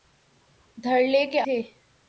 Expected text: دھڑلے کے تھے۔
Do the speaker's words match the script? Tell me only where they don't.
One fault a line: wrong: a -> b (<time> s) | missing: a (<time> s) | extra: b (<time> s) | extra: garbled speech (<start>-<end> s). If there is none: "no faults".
no faults